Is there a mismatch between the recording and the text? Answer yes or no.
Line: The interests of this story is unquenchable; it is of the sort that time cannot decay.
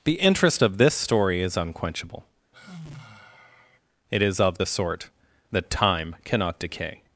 yes